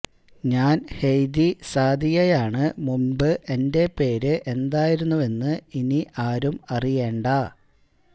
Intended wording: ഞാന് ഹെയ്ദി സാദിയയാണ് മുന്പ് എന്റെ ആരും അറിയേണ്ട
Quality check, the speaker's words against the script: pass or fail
fail